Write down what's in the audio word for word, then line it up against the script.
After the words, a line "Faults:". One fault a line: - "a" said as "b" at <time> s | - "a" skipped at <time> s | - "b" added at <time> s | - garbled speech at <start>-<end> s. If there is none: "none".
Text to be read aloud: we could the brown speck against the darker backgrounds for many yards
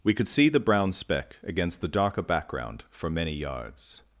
we could see the brown speck against the darker background for many yards
Faults:
- "see" added at 0.3 s
- "backgrounds" said as "background" at 2.2 s